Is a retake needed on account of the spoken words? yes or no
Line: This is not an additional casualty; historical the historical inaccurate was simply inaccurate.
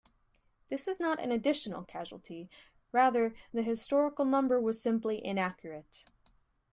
yes